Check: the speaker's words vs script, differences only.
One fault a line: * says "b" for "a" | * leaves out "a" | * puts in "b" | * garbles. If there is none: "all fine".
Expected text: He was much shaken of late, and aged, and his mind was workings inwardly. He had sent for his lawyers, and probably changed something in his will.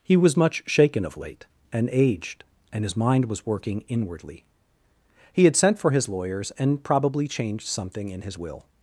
* says "working" for "workings"